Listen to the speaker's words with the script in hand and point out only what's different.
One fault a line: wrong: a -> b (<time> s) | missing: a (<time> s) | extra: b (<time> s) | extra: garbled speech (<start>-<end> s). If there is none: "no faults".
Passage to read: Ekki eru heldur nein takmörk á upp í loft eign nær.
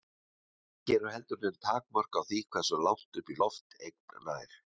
extra: því hversu langt (2.3 s)